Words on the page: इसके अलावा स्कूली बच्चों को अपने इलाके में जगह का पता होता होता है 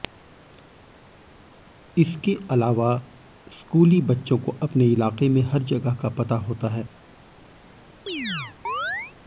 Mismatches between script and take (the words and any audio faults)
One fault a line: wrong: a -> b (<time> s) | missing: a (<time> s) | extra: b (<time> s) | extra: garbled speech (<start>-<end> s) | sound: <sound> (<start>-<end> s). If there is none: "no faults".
extra: हर (5.4 s)
missing: होता (6.7 s)
sound: chirp (8.1-9.1 s)